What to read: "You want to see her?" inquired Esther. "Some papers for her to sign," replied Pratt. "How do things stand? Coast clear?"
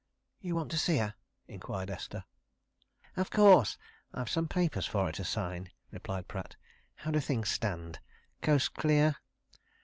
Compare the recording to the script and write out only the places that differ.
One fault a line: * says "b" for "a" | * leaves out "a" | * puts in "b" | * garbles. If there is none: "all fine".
* puts in "Of course I've"